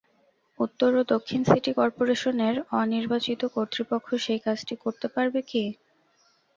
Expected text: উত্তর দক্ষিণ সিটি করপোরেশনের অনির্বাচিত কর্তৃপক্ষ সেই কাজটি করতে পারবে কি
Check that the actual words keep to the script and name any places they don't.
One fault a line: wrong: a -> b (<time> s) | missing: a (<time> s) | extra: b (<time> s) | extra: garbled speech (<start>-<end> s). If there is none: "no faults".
extra: ও (0.9 s)